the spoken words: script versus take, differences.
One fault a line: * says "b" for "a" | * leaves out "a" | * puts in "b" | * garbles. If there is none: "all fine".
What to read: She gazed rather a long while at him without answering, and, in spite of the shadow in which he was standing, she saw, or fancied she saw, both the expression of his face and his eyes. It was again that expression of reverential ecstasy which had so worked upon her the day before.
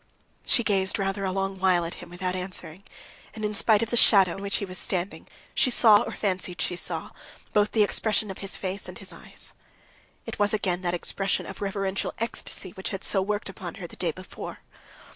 * leaves out "in"